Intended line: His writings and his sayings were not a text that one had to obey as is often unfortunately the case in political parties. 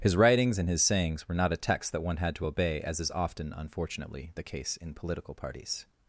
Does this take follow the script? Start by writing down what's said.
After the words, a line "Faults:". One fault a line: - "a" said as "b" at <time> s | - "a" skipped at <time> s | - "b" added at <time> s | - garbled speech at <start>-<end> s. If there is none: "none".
His writings and his sayings were not a text that one had to obey as is often unfortunately the case in political parties.
Faults:
none